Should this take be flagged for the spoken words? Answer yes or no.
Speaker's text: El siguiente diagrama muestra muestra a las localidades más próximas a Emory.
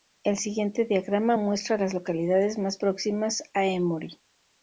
yes